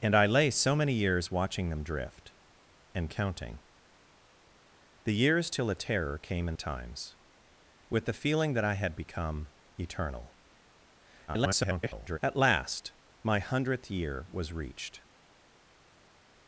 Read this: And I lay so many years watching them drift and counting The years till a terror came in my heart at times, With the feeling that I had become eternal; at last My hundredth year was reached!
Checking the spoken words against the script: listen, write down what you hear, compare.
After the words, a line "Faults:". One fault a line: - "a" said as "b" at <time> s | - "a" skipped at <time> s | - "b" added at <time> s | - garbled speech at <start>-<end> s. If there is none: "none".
And I lay so many years watching them drift and counting The years till a terror came in times, With the feeling that I had become eternal; [garbled] at last My hundredth year was reached!
Faults:
- "my heart at" skipped at 6.6 s
- garbled speech at 11.3-12.2 s